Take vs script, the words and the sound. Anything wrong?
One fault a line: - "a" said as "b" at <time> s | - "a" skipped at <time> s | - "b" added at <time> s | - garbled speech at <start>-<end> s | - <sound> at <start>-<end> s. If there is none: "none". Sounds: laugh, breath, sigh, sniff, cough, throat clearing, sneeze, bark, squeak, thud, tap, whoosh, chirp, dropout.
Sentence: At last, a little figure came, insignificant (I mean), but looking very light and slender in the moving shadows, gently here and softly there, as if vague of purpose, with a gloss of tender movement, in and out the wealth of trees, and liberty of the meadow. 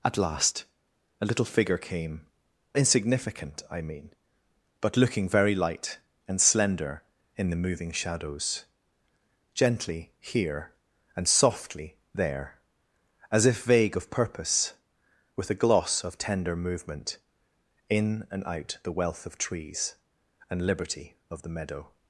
none